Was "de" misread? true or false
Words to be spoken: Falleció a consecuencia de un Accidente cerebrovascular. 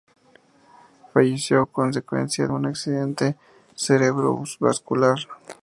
true